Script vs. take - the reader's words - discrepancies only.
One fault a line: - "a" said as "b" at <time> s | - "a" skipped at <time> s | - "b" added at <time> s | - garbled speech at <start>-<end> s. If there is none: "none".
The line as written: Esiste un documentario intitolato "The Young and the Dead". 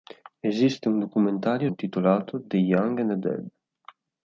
none